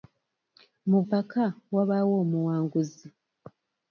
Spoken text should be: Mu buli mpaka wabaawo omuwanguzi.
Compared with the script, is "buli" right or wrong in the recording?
wrong